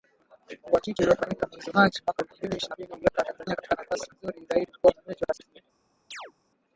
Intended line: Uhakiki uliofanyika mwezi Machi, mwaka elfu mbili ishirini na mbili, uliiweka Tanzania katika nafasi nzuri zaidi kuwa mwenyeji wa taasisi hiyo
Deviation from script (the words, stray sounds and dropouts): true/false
true